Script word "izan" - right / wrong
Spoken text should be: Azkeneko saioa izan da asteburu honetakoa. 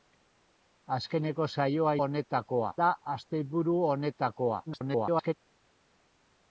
wrong